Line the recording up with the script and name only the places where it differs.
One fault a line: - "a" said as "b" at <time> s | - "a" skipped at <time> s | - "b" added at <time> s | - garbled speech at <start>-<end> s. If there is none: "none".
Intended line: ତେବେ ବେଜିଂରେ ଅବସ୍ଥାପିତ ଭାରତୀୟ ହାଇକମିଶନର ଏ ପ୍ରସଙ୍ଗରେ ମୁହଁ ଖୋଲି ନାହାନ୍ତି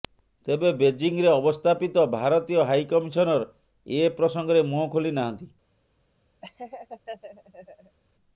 none